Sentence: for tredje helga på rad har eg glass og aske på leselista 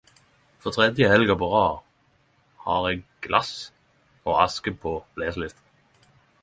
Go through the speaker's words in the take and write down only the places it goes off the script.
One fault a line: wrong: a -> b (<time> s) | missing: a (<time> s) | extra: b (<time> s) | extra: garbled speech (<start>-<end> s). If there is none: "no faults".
no faults